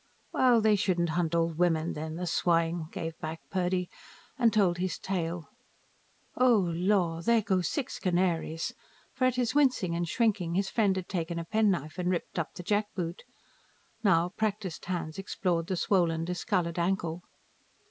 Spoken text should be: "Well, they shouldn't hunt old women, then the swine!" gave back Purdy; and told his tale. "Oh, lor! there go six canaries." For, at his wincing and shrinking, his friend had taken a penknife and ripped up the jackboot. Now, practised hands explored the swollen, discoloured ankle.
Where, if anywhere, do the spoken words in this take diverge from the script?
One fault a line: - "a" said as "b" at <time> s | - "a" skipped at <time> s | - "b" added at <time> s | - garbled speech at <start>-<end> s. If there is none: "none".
none